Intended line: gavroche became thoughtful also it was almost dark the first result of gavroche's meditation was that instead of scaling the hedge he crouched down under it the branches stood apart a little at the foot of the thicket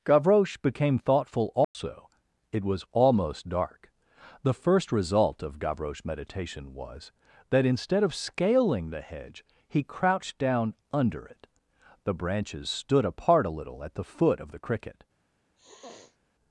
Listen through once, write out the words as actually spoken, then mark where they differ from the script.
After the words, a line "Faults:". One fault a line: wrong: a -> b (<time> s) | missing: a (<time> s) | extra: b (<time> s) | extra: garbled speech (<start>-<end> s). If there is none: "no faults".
gavroche became thoughtful also it was almost dark the first result of gavroche's meditation was that instead of scaling the hedge he crouched down under it the branches stood apart a little at the foot of the cricket
Faults:
wrong: thicket -> cricket (14.6 s)